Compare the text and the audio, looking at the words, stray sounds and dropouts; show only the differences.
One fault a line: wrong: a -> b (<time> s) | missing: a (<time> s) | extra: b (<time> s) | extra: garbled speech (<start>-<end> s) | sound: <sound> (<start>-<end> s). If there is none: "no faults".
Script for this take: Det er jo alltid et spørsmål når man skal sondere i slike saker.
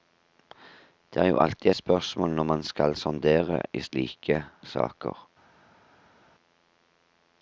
no faults